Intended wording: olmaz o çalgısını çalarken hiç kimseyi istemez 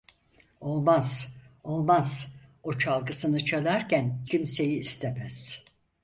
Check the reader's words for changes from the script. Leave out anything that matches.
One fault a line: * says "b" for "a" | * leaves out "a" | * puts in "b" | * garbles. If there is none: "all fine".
* puts in "olmaz"
* leaves out "hiç"